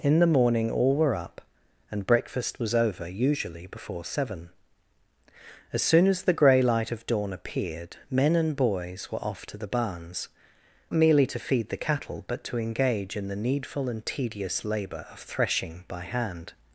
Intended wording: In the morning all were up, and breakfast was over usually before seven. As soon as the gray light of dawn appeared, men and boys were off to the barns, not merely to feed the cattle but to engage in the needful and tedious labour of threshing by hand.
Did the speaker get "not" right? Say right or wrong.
wrong